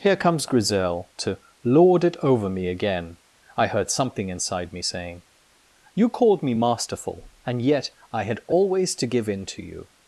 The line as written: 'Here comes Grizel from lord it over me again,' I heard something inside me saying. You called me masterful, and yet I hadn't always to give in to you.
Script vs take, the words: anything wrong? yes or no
yes